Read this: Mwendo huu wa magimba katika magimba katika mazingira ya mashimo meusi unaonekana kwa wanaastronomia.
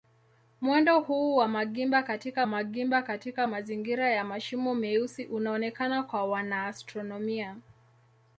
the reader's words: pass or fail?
pass